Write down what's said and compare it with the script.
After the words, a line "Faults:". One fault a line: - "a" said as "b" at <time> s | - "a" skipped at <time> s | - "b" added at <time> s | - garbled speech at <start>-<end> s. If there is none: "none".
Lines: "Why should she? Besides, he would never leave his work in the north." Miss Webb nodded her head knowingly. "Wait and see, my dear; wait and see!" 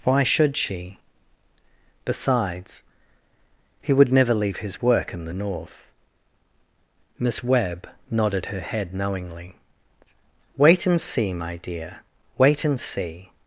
"Why should she? Besides, he would never leave his work in the north." Miss Webb nodded her head knowingly. "Wait and see, my dear; wait and see!"
Faults:
none